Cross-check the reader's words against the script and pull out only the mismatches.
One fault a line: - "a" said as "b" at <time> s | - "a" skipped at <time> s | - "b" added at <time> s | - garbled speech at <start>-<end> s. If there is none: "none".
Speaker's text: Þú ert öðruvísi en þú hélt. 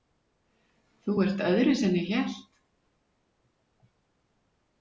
- "þú" said as "ég" at 2.0 s